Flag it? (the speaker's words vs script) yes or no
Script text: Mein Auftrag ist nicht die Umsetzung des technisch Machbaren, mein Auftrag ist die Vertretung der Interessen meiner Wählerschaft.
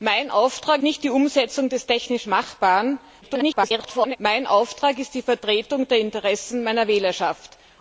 yes